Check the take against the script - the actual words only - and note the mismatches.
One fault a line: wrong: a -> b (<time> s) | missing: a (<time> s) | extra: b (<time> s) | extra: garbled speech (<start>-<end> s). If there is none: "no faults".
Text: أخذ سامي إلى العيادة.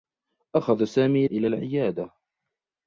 no faults